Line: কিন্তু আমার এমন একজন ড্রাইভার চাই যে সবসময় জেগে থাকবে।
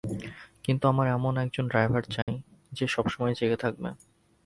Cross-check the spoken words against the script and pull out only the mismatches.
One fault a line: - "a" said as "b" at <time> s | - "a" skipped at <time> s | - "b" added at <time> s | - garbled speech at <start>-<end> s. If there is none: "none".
none